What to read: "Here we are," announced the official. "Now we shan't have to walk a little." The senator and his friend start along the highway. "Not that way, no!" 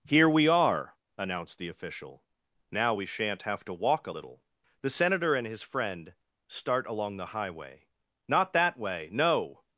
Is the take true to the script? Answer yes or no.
yes